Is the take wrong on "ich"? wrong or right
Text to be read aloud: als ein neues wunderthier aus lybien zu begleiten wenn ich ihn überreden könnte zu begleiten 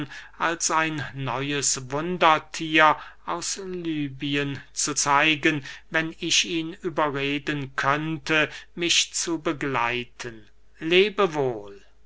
right